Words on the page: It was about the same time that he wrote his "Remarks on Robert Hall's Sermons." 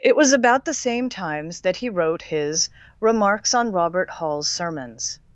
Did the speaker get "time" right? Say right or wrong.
wrong